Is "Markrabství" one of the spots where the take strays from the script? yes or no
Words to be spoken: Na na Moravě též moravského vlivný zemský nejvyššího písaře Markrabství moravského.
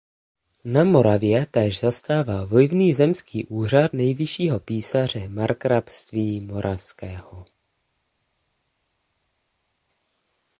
no